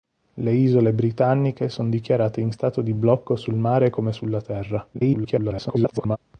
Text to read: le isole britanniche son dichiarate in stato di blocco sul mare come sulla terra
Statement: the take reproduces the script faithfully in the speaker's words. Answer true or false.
false